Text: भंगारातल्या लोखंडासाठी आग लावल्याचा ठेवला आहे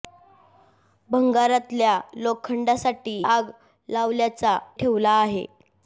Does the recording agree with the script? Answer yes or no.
yes